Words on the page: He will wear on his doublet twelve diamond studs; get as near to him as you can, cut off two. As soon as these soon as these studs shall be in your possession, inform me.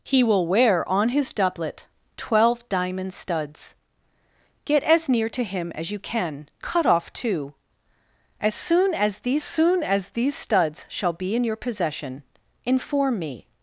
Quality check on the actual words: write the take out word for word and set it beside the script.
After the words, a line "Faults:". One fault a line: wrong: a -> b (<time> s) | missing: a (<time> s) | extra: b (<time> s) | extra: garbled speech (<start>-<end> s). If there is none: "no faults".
He will wear on his doublet twelve diamond studs; get as near to him as you can, cut off two. As soon as these soon as these studs shall be in your possession, inform me.
Faults:
no faults